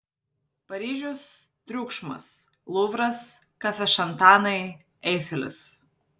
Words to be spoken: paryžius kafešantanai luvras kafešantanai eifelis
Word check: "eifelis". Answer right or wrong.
right